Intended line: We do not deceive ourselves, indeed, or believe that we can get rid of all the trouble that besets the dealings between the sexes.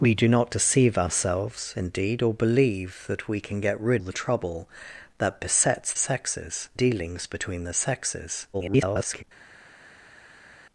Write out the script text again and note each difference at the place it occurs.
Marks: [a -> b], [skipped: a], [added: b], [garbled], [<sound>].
We do not deceive ourselves, indeed, or believe that we can get rid [skipped: of all] the trouble that besets [the -> sexes] dealings between the sexes. [garbled]